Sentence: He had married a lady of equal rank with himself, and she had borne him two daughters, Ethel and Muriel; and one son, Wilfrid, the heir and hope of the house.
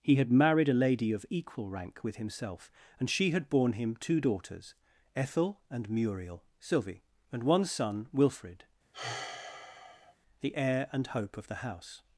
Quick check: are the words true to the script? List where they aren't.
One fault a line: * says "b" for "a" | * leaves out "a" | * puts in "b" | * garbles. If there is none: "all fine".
* puts in "sylvie"